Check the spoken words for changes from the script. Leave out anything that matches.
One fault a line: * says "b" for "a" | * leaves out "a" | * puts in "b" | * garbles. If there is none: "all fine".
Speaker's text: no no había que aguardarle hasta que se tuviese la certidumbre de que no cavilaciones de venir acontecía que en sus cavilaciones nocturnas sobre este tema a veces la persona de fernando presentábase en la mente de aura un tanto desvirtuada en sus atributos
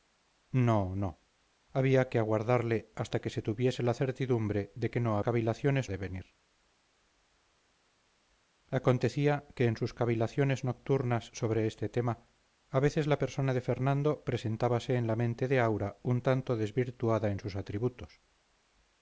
all fine